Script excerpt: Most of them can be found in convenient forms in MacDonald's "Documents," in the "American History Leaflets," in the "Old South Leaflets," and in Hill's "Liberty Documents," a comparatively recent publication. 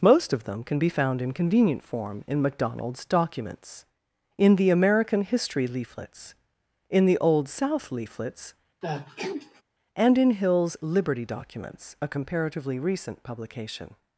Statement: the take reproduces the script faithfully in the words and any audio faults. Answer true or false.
false